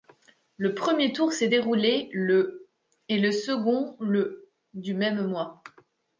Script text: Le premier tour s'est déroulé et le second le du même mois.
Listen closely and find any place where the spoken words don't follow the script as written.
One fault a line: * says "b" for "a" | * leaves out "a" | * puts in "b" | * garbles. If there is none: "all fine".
* puts in "le"